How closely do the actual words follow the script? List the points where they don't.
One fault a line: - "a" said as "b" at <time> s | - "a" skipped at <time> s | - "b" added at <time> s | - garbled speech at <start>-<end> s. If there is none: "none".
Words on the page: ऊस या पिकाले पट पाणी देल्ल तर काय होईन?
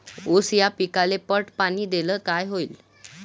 - "तर" skipped at 2.2 s